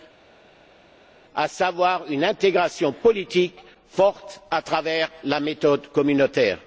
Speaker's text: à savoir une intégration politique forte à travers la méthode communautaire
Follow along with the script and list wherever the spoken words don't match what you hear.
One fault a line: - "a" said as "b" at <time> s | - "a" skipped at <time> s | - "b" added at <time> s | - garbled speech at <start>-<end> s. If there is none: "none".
none